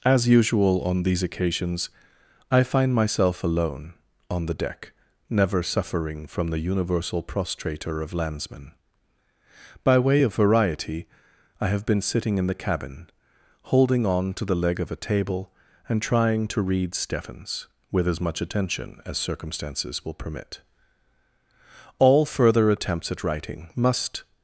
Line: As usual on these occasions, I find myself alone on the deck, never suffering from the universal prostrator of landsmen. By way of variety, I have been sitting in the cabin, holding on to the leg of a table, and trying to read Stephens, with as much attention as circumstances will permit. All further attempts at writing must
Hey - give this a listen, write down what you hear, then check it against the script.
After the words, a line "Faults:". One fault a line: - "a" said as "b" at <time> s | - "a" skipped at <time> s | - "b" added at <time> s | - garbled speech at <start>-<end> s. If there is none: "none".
As usual on these occasions, I find myself alone on the deck, never suffering from the universal prostrator of landsmen. By way of variety, I have been sitting in the cabin, holding on to the leg of a table, and trying to read Stephens, with as much attention as circumstances will permit. All further attempts at writing must
Faults:
none